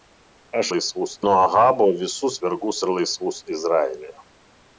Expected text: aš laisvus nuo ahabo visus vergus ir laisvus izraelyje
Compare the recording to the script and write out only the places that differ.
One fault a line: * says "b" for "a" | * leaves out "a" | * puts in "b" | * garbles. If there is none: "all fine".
all fine